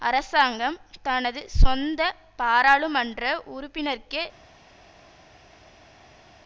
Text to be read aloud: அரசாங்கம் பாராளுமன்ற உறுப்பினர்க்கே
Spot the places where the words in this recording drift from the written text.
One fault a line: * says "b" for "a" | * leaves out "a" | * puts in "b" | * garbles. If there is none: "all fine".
* puts in "தனது சொந்த"